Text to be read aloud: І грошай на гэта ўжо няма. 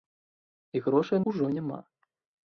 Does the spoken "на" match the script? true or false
false